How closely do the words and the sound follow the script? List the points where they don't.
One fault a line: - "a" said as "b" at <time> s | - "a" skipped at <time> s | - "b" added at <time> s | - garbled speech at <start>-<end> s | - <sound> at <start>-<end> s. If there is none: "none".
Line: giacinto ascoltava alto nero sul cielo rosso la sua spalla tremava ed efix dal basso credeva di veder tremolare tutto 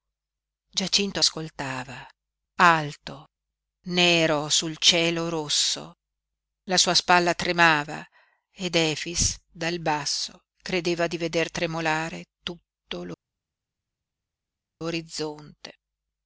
none